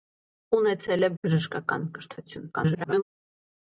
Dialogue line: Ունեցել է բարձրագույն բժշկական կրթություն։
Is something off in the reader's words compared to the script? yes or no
yes